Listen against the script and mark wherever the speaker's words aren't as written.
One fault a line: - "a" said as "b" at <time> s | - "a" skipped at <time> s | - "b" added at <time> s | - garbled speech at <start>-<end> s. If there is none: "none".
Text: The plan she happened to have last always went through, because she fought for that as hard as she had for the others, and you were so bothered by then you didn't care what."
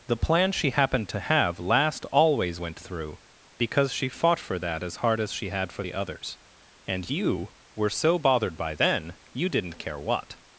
none